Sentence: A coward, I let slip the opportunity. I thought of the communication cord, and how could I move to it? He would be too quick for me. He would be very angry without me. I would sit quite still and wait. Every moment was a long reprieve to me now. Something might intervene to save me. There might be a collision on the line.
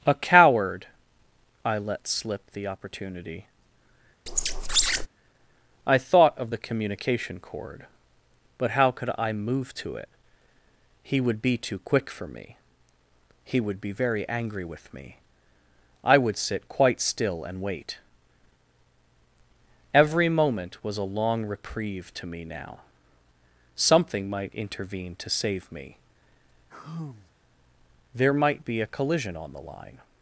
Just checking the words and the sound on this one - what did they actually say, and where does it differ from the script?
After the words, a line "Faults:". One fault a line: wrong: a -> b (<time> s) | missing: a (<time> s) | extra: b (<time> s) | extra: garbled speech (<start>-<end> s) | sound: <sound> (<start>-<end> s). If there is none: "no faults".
A coward, I let slip the opportunity. I thought of the communication cord, but how could I move to it? He would be too quick for me. He would be very angry with me. I would sit quite still and wait. Every moment was a long reprieve to me now. Something might intervene to save me. There might be a collision on the line.
Faults:
sound: squeak (4.3-5.1 s)
wrong: and -> but (8.6 s)
wrong: without -> with (14.6 s)
sound: sigh (26.7-27.3 s)